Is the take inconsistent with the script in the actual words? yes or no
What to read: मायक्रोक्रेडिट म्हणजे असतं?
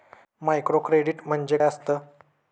no